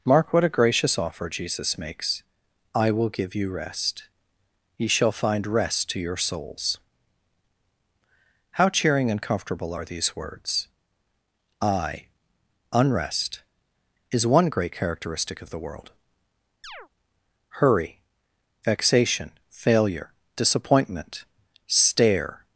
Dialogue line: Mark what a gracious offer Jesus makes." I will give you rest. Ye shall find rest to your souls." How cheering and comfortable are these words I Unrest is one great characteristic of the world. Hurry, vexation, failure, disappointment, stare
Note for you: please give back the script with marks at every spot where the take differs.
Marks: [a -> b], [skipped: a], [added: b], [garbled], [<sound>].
Mark what a gracious offer Jesus makes." I will give you rest. Ye shall find rest to your souls." How cheering and comfortable are these words I Unrest is one great characteristic of the world. [chirp] Hurry, vexation, failure, disappointment, stare